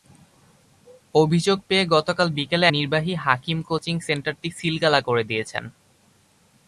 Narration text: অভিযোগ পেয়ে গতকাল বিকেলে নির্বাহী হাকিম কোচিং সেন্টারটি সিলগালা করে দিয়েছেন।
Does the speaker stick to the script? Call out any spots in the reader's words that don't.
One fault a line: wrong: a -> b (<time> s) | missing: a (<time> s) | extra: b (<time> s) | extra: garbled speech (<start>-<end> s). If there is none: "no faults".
no faults